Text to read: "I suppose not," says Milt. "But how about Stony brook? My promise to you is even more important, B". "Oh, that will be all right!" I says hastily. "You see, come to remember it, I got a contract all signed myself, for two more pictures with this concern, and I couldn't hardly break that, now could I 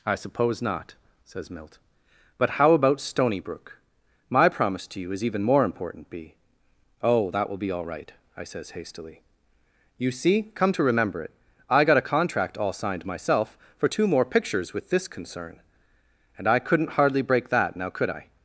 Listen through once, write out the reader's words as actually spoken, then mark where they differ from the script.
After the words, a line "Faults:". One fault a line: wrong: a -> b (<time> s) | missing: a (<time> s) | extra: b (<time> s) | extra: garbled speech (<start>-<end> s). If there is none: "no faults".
"I suppose not," says Milt. "But how about Stony brook? My promise to you is even more important, B". "Oh, that will be all right!" I says hastily. "You see, come to remember it, I got a contract all signed myself, for two more pictures with this concern, and I couldn't hardly break that, now could I
Faults:
no faults